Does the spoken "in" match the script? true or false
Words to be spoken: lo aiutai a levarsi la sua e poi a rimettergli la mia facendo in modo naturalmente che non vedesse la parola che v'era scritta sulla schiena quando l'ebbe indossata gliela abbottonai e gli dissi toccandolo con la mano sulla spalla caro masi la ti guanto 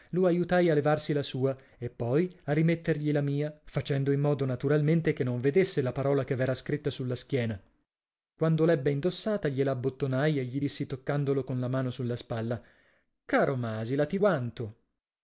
true